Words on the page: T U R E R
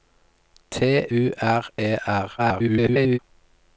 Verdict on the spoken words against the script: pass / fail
fail